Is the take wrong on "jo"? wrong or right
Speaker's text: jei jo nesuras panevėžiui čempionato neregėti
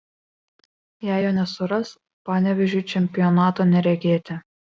right